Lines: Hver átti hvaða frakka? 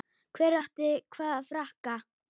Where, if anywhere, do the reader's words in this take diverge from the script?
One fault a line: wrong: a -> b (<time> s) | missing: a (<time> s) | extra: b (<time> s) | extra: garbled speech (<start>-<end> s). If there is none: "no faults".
no faults